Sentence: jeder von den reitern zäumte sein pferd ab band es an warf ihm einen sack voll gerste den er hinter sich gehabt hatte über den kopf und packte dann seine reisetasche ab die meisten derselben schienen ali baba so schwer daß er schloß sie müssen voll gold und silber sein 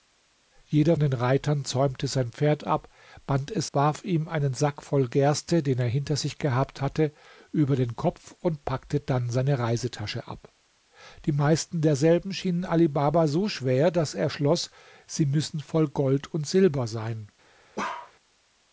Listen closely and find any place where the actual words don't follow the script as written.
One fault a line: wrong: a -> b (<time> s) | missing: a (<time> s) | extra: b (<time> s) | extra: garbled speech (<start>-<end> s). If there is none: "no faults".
missing: von (1.0 s)
missing: an (3.7 s)